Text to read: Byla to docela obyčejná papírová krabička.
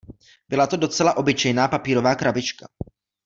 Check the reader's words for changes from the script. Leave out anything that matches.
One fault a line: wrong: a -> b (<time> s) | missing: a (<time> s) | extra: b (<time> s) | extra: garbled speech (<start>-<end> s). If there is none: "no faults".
no faults